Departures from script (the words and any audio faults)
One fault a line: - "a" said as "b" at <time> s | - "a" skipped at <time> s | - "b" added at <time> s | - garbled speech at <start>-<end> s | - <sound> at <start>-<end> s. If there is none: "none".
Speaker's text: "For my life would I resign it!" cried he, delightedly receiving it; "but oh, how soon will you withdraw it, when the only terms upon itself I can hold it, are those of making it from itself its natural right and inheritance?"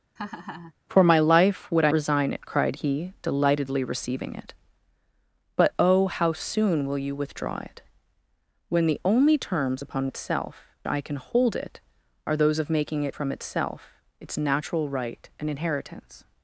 - laugh at 0.2-0.7 s